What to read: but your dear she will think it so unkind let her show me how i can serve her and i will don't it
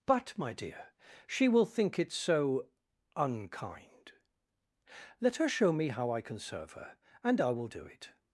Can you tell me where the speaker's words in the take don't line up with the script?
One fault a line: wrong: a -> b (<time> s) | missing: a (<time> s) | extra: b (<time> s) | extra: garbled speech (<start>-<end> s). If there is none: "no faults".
wrong: your -> my (0.4 s)
wrong: don't -> do (7.7 s)